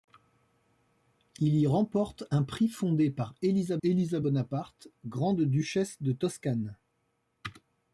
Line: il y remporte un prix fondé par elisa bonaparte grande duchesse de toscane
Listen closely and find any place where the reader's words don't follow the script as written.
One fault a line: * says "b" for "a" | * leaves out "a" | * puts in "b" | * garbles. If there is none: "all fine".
* puts in "elisa"